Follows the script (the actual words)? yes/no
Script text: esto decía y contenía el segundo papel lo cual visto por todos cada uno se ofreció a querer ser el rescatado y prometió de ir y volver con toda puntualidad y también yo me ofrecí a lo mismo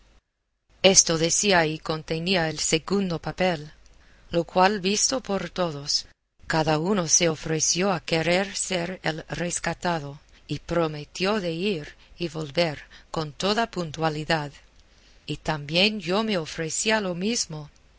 yes